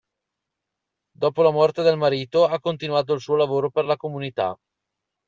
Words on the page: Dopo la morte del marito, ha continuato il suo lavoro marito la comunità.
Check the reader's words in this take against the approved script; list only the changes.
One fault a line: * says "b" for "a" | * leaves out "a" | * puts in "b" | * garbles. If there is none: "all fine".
* says "per" for "marito"